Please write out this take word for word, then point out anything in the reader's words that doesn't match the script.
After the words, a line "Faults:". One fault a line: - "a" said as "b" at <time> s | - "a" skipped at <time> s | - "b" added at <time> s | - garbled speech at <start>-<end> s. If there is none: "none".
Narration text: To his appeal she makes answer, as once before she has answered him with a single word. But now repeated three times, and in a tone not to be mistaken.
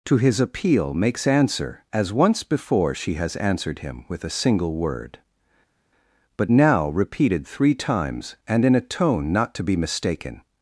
To his appeal makes answer, as once before she has answered him with a single word. But now repeated three times, and in a tone not to be mistaken.
Faults:
- "she" skipped at 0.9 s